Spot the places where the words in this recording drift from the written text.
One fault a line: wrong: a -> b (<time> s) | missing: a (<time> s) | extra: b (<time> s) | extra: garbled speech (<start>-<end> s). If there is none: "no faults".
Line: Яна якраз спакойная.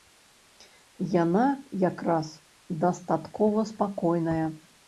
extra: дастаткова (2.9 s)